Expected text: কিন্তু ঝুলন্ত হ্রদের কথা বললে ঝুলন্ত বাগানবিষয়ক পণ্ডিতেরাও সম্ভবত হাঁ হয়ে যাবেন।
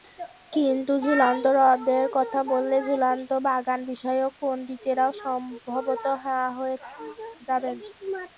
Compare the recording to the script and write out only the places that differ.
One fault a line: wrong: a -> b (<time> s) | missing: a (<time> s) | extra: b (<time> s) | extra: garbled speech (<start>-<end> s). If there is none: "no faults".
no faults